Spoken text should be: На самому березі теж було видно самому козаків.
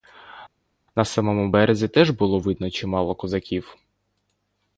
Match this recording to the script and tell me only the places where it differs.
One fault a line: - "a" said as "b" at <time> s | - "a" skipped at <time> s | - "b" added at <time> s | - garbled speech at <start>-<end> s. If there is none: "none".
- "самому" said as "чимало" at 2.7 s